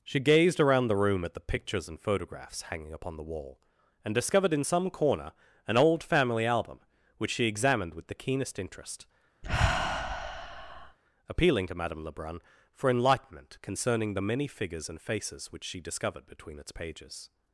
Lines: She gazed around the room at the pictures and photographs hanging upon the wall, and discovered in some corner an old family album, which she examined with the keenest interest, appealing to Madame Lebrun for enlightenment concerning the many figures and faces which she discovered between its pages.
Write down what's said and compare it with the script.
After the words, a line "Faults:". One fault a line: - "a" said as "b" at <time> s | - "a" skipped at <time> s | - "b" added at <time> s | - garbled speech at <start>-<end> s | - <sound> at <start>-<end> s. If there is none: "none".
She gazed around the room at the pictures and photographs hanging upon the wall, and discovered in some corner an old family album, which she examined with the keenest interest, appealing to Madame Lebrun for enlightenment concerning the many figures and faces which she discovered between its pages.
Faults:
- sigh at 9.4-11.0 s